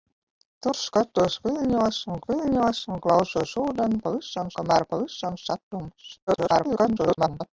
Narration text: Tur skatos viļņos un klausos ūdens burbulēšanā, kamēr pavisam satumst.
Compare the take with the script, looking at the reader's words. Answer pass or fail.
fail